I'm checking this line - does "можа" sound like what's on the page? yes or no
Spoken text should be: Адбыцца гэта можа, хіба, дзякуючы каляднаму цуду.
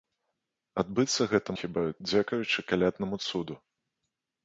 no